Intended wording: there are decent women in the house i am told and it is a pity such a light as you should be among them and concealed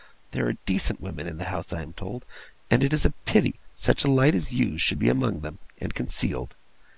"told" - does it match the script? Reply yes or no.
yes